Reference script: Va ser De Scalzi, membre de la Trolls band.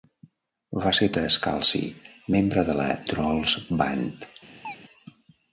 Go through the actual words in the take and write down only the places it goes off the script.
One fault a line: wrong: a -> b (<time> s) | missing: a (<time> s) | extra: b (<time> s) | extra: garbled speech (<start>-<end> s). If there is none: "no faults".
no faults